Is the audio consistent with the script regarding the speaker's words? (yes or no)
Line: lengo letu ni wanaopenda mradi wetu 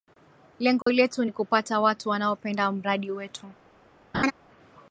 no